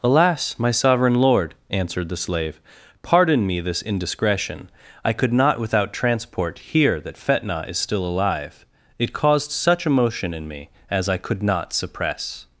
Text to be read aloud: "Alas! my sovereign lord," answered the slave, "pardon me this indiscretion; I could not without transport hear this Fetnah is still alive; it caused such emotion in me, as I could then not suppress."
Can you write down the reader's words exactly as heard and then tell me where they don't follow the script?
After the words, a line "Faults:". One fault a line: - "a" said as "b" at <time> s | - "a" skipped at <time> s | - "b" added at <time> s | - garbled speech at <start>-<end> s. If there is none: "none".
"Alas! my sovereign lord," answered the slave, "pardon me this indiscretion; I could not without transport hear that Fetnah is still alive; it caused such emotion in me, as I could not suppress."
Faults:
- "this" said as "that" at 7.0 s
- "then" skipped at 11.4 s